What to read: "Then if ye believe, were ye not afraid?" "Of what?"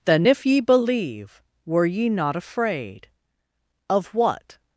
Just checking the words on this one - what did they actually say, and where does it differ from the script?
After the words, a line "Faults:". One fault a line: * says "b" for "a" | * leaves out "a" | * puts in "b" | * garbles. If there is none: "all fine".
"Then if ye believe, were ye not afraid?" "Of what?"
Faults:
all fine